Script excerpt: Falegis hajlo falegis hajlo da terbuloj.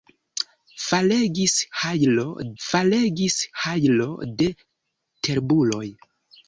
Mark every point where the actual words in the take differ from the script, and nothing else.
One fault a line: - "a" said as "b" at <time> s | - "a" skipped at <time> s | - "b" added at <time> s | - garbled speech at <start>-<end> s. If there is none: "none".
none